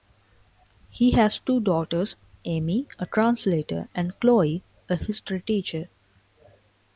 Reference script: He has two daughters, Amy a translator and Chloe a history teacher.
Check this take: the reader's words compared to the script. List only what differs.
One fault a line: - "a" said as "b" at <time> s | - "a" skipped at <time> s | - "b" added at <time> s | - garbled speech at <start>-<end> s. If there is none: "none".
none